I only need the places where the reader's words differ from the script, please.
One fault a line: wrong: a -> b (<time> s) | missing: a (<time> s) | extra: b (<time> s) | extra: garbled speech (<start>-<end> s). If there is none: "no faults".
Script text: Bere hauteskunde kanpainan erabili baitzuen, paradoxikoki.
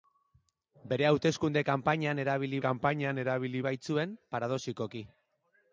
extra: kanpainan erabili (2.6 s)